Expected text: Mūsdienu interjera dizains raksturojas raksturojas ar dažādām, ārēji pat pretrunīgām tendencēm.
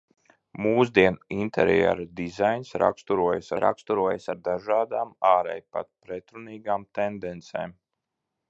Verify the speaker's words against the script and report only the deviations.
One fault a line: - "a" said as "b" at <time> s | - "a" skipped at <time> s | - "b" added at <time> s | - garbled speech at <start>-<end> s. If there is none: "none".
none